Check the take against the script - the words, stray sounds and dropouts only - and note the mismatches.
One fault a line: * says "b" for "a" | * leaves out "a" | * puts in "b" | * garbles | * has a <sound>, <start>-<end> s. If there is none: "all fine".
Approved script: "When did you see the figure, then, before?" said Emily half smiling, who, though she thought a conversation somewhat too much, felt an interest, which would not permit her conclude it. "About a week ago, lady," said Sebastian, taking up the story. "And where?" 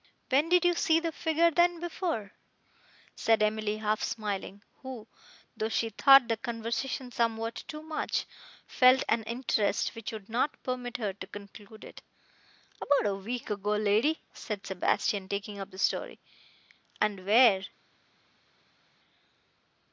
* says "the" for "a"
* puts in "to"